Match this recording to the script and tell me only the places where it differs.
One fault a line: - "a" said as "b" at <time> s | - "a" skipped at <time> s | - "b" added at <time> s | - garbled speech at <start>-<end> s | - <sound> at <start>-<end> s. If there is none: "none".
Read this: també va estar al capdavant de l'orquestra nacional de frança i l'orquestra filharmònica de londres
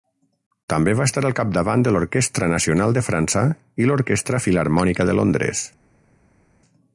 none